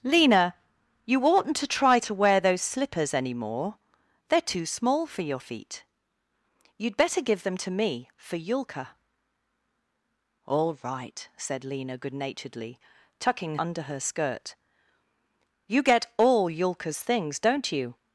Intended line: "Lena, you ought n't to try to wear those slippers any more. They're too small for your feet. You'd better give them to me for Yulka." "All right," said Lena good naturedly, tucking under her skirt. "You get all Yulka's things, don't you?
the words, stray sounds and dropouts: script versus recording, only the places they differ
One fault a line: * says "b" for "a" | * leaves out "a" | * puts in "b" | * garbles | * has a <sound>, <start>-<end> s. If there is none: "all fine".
all fine